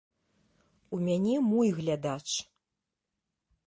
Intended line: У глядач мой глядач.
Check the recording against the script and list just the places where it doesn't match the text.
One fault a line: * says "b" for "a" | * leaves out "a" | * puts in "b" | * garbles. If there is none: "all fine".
* says "мяне" for "глядач"